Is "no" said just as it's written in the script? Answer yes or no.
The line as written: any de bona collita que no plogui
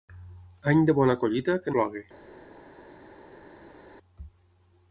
no